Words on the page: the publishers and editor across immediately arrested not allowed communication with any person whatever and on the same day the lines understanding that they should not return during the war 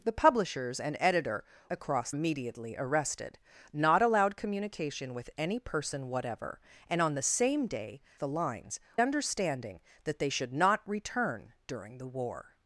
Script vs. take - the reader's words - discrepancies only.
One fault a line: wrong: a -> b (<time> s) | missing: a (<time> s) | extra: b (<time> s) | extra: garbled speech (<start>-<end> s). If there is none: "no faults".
no faults